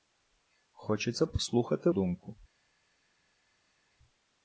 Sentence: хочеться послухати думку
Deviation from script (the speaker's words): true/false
false